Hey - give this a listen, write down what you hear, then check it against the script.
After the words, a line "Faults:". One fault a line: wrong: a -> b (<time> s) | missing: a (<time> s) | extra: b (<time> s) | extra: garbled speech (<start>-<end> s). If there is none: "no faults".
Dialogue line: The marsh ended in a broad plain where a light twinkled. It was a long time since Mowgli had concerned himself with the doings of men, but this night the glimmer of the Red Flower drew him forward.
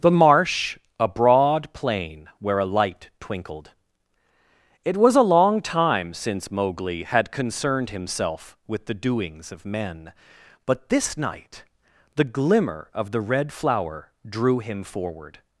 The marsh a broad plain where a light twinkled. It was a long time since Mowgli had concerned himself with the doings of men, but this night the glimmer of the Red Flower drew him forward.
Faults:
missing: ended in (0.8 s)